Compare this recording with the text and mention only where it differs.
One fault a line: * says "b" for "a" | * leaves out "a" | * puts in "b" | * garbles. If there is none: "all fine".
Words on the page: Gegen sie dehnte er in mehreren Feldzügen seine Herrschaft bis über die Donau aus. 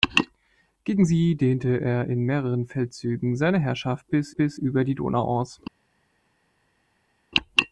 * puts in "bis"